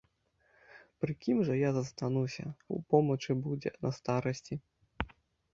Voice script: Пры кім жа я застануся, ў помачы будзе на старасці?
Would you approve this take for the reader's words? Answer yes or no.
yes